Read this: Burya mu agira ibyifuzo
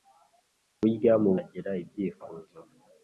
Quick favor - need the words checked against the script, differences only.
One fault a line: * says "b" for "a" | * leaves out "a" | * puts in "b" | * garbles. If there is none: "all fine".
all fine